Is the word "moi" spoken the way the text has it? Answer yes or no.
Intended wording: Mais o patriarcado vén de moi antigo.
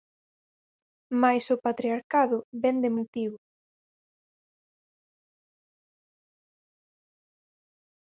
no